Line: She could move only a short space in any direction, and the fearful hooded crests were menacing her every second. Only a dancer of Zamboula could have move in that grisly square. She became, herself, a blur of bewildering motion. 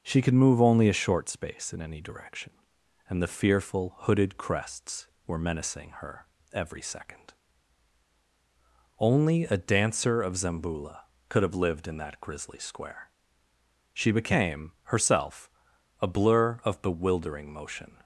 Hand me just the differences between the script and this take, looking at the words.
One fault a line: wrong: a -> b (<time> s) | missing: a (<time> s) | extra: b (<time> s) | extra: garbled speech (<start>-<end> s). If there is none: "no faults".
wrong: move -> lived (11.6 s)